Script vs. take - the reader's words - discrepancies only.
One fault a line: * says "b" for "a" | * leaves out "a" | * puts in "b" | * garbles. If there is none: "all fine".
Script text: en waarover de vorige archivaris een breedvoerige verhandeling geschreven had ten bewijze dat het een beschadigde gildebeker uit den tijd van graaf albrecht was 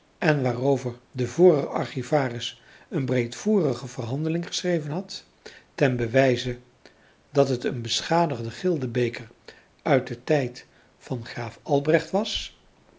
all fine